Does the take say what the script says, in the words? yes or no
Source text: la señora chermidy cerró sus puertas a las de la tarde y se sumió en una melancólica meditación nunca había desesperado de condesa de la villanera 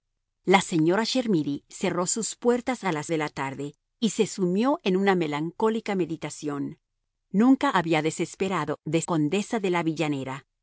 yes